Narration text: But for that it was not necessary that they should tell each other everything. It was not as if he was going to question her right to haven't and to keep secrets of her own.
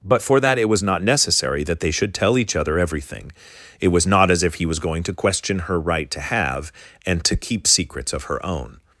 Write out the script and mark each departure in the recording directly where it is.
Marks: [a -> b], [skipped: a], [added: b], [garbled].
But for that it was not necessary that they should tell each other everything. It was not as if he was going to question her right to [haven't -> have] and to keep secrets of her own.